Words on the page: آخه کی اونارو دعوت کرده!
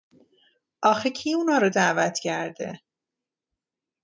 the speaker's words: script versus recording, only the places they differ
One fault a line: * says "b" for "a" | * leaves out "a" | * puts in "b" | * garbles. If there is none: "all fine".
all fine